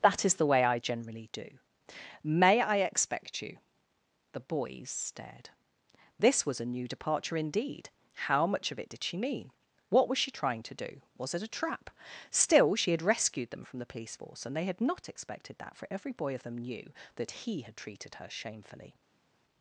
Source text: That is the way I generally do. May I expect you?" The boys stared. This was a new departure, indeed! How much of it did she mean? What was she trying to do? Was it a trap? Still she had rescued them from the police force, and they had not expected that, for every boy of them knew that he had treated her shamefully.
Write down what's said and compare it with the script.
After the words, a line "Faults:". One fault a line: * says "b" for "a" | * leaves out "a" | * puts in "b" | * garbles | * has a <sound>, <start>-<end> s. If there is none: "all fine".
That is the way I generally do. May I expect you?" The boys stared. This was a new departure, indeed! How much of it did she mean? What was she trying to do? Was it a trap? Still she had rescued them from the police force, and they had not expected that, for every boy of them knew that he had treated her shamefully.
Faults:
all fine